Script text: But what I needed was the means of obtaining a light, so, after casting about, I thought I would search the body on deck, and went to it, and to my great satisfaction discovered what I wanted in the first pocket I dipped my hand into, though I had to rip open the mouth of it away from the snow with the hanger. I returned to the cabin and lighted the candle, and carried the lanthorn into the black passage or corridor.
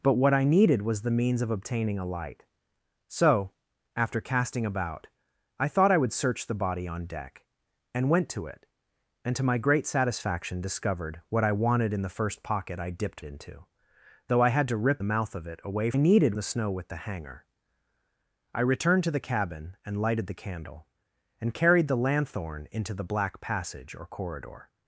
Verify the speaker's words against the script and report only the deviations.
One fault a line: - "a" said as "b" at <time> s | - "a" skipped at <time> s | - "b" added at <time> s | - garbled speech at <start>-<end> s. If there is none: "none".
- "my hand" skipped at 13.2 s
- "open" skipped at 15.0 s
- "from" said as "needed" at 16.0 s